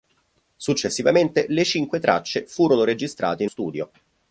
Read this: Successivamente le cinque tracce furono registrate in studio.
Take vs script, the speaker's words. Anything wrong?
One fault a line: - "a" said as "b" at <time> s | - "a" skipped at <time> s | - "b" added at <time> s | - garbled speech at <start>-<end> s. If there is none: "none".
none